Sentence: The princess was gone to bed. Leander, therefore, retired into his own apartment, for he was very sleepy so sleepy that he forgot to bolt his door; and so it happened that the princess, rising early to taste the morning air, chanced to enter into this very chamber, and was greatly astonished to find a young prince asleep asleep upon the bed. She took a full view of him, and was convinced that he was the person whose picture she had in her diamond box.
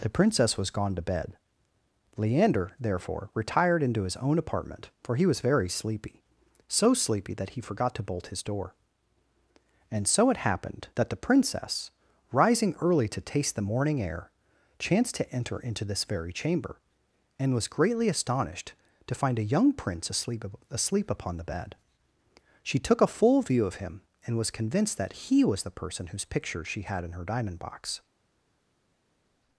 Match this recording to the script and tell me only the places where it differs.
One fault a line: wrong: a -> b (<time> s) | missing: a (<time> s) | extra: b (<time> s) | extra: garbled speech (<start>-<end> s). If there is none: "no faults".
no faults